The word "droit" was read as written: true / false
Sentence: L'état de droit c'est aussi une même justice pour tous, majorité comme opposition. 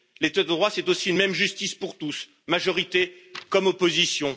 true